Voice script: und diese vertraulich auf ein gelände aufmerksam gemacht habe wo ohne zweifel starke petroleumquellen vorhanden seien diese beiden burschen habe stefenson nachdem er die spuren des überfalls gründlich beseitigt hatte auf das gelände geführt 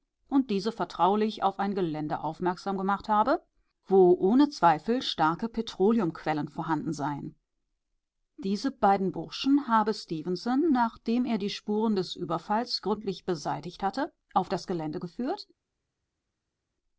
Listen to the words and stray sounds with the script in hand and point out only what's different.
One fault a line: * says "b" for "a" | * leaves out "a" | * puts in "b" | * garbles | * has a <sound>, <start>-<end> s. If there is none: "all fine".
all fine